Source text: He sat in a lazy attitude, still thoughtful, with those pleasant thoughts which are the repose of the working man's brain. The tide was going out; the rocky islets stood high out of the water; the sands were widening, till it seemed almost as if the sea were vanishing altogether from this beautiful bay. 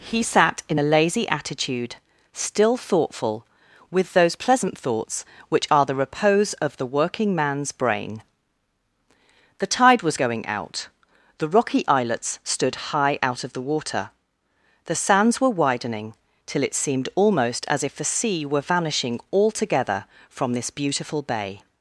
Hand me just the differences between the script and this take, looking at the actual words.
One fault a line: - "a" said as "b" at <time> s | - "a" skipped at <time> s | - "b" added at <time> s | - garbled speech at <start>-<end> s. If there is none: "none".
none